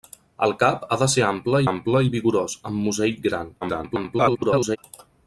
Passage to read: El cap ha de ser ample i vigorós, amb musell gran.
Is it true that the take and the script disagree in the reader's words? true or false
true